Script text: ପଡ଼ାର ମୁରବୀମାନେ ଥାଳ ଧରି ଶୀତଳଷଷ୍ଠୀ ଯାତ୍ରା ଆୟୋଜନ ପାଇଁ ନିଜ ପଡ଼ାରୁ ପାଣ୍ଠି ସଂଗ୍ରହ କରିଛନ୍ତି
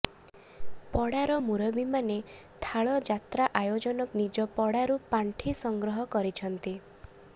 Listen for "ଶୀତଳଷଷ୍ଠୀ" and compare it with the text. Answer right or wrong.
wrong